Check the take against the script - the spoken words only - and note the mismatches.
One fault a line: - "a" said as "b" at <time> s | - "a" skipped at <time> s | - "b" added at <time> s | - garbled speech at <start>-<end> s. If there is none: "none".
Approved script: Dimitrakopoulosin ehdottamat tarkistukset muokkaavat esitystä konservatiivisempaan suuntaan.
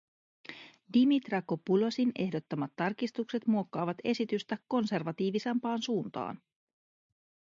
none